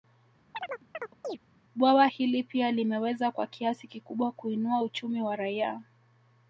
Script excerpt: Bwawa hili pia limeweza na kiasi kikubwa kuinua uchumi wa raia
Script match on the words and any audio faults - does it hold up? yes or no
no